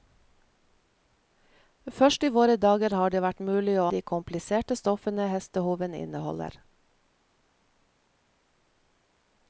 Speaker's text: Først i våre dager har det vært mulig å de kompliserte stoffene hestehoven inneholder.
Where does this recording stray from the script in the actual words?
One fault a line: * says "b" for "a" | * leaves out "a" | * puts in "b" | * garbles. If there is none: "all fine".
all fine